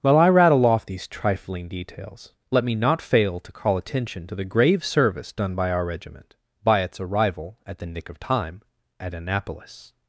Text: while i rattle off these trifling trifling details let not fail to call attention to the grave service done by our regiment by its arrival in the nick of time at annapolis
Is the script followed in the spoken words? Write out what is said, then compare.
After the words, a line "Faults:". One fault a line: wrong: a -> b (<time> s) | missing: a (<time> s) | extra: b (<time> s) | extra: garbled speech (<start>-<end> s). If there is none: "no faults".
while i rattle off these trifling details let me not fail to call attention to the grave service done by our regiment by its arrival at the nick of time at annapolis
Faults:
missing: trifling (1.7 s)
extra: me (2.6 s)
wrong: in -> at (7.7 s)